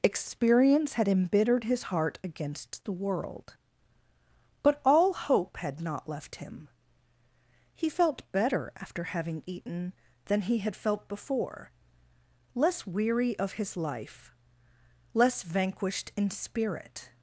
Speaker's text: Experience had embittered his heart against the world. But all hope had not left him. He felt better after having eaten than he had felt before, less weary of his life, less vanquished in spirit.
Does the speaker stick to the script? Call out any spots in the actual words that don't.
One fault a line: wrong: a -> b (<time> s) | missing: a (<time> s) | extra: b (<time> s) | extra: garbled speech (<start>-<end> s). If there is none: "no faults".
no faults